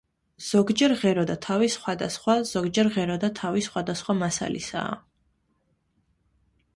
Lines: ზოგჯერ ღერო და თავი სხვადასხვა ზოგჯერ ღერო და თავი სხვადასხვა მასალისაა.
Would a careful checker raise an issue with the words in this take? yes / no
no